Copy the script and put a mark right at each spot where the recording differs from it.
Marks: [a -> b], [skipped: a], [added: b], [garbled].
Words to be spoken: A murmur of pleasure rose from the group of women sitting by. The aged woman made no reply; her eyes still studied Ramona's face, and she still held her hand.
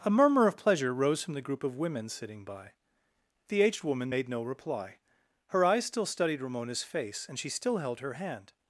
A murmur of pleasure rose from the group of women sitting by. The aged woman made no reply; her eyes still studied Ramona's face, and she still held her hand.